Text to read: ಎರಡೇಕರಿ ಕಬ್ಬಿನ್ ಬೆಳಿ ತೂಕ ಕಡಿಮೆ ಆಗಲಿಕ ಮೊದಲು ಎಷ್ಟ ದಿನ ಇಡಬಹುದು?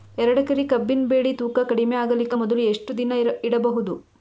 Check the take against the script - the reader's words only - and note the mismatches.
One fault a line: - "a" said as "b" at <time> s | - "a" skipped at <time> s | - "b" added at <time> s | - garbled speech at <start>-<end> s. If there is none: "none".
none